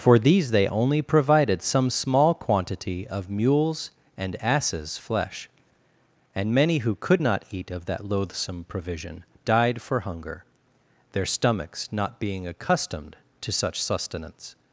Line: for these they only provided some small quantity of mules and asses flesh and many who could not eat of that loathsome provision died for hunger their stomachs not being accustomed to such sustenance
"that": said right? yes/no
yes